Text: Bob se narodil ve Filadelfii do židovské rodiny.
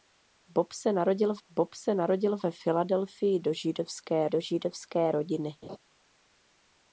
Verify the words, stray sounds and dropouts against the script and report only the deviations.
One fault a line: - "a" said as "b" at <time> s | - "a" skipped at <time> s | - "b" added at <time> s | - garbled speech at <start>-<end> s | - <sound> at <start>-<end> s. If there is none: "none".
- "bob se narodil" added at 1.5 s
- "do židovské" added at 4.3 s
- laugh at 5.6-5.8 s